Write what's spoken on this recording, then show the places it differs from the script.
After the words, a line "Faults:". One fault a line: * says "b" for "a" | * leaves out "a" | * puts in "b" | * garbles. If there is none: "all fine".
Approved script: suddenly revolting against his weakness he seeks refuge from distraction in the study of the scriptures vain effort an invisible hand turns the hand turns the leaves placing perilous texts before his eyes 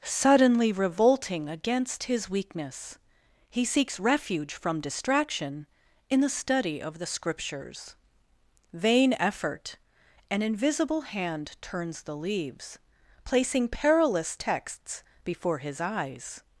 suddenly revolting against his weakness he seeks refuge from distraction in the study of the scriptures vain effort an invisible hand turns the leaves placing perilous texts before his eyes
Faults:
* leaves out "hand turns the"